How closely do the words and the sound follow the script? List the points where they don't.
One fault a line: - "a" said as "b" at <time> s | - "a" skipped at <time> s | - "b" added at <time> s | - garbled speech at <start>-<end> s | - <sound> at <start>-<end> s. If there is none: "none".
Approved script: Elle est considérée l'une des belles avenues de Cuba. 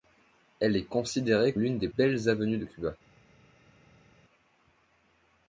none